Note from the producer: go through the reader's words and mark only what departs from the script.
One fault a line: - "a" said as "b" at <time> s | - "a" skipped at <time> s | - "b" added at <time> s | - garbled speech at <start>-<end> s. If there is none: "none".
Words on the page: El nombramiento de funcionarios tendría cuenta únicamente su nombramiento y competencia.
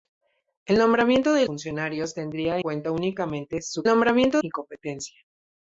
none